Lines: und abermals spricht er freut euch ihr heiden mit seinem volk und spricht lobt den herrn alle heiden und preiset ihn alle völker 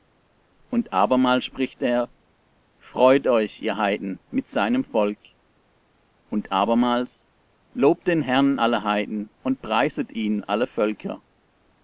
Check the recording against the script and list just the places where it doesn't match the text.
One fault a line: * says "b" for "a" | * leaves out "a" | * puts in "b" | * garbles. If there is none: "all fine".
* says "abermals" for "spricht"